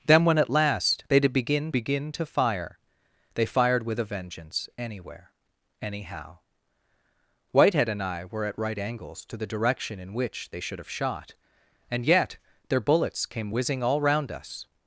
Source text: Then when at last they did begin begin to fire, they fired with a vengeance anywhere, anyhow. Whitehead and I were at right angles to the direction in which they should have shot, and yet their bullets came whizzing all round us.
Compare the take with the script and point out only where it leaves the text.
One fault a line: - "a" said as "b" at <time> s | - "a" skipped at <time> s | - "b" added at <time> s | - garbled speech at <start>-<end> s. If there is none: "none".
none